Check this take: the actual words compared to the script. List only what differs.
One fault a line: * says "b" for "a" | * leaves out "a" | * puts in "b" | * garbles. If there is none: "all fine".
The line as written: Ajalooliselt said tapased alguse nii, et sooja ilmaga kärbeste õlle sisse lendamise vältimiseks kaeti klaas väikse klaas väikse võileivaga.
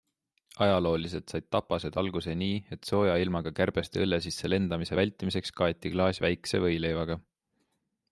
* leaves out "klaas väikse"